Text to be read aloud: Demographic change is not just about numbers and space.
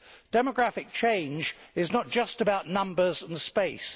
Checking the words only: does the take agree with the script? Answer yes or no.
yes